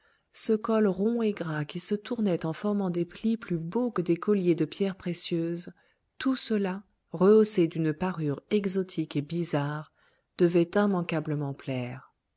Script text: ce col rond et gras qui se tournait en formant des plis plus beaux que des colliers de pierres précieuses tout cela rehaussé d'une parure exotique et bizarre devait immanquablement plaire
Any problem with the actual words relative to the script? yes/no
no